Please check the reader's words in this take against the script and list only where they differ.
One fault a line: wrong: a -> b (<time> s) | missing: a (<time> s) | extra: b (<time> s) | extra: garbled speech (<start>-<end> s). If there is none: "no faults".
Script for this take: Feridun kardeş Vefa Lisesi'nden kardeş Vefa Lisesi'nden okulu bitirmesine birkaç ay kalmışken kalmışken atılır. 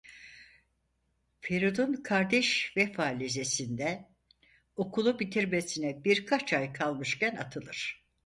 missing: kardeş Vefa Lisesi'nden (4.2 s)
missing: kalmışken (7.3 s)